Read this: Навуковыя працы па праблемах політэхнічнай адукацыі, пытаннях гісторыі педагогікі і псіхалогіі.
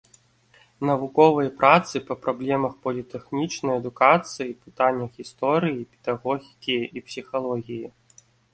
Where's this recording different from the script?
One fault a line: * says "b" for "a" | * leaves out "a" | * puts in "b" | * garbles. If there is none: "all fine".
all fine